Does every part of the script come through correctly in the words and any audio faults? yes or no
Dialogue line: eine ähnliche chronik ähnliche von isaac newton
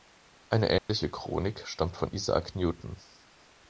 no